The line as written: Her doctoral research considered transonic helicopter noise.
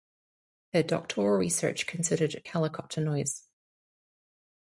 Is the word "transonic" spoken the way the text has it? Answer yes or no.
no